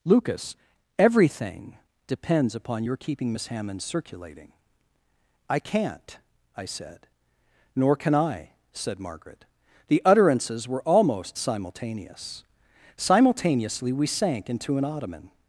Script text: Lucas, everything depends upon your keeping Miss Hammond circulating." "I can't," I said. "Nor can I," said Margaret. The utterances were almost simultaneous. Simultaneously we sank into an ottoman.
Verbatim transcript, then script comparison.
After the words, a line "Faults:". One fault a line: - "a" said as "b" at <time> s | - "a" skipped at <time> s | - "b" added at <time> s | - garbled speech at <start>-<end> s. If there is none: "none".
Lucas, everything depends upon your keeping Miss Hammond circulating." "I can't," I said. "Nor can I," said Margaret. The utterances were almost simultaneous. Simultaneously we sank into an ottoman.
Faults:
none